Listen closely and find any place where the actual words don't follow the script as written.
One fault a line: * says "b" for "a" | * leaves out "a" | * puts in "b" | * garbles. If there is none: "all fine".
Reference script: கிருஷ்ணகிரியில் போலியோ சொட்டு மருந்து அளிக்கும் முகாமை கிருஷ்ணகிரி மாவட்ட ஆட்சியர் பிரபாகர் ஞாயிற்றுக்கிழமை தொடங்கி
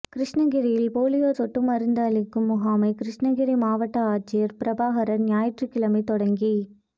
all fine